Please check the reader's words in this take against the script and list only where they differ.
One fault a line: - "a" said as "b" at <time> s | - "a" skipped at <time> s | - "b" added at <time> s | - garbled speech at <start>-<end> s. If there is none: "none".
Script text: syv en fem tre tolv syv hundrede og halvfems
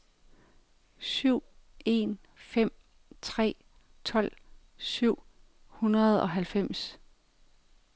none